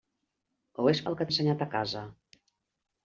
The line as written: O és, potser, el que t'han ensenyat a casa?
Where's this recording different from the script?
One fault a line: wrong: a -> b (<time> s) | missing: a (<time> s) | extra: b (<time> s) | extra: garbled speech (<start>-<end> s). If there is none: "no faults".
missing: potser (1.0 s)
missing: t'han (1.3 s)